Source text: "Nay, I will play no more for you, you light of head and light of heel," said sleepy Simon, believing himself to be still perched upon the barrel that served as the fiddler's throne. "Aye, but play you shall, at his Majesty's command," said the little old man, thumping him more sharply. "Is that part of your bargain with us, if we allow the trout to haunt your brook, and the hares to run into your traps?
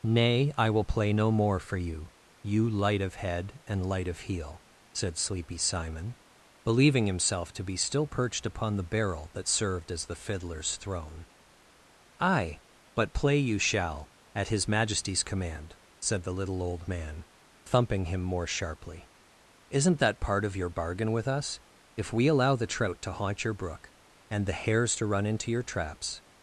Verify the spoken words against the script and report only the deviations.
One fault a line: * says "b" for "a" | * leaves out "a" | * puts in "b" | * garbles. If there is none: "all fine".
* says "Isn't" for "Is"